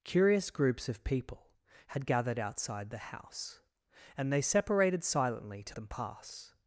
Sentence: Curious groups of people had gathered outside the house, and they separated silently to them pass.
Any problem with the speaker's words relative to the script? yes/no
no